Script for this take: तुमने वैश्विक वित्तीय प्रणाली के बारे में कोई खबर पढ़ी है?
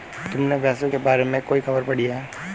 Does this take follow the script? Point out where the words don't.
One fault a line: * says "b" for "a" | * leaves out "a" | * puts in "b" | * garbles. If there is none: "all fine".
* leaves out "वित्तीय प्रणाली"